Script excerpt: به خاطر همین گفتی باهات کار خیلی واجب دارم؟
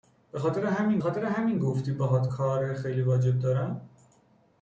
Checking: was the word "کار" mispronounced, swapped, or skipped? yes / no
no